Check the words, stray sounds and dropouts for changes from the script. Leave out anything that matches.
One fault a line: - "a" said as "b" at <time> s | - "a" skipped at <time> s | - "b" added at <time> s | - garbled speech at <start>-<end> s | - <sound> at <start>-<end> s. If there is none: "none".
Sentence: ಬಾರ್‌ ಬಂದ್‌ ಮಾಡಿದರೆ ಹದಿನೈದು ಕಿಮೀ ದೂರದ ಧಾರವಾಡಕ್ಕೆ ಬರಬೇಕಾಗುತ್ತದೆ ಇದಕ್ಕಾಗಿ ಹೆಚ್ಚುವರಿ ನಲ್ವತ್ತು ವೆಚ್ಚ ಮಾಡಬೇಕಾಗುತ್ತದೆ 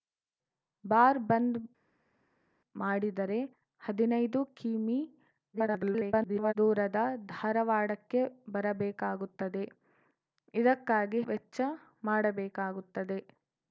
- garbled speech at 5.5-6.5 s
- "ಹೆಚ್ಚುವರಿ ನಲ್ವತ್ತು" skipped at 11.2 s